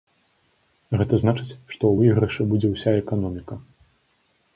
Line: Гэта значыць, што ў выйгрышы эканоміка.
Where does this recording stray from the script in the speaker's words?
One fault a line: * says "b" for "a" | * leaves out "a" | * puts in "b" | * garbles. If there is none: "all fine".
* puts in "будзе ўся"